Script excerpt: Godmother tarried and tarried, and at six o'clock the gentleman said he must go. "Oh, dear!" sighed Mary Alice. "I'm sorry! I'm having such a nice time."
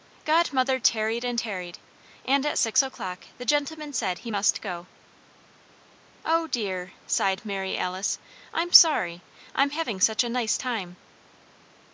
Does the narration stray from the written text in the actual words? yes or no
no